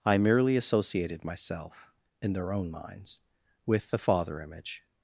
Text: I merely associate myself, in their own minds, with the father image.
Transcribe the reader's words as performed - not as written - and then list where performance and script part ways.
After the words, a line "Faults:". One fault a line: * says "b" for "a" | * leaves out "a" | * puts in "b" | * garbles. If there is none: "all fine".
I merely associated myself, in their own minds, with the father image.
Faults:
* says "associated" for "associate"